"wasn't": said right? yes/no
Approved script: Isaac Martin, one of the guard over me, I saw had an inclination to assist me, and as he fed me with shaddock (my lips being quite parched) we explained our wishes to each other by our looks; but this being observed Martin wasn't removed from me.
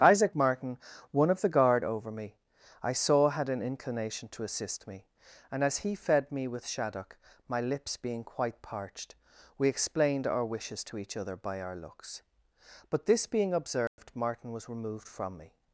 no